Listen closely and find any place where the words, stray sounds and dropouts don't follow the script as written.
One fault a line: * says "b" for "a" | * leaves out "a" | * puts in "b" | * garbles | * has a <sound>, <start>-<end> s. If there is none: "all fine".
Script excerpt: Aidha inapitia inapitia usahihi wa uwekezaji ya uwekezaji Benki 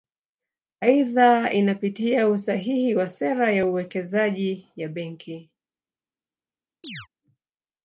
* leaves out "inapitia"
* says "sera" for "uwekezaji"
* puts in "ya"
* has a chirp, 6.8-7.1 s